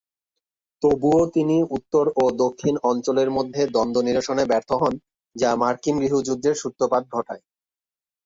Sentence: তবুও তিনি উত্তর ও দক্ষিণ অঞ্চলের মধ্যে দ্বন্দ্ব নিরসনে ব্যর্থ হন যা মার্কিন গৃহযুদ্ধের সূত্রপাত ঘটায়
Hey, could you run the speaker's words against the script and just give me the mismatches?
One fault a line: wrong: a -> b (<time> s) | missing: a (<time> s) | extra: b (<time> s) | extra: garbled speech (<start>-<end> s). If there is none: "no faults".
no faults